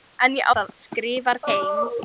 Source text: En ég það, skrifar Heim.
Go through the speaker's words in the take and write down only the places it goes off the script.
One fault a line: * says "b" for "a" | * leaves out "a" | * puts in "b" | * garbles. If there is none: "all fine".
all fine